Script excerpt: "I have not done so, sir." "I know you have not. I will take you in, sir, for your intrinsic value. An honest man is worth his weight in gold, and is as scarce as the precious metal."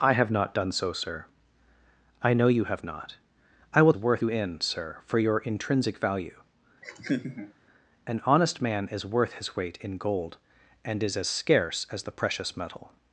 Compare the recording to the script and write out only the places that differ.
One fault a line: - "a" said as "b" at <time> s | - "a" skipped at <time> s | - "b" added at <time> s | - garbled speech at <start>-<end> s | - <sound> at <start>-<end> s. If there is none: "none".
- "take" said as "worth" at 4.0 s
- laugh at 6.8-7.5 s